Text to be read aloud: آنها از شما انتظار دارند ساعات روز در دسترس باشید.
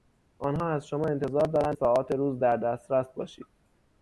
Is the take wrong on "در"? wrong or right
right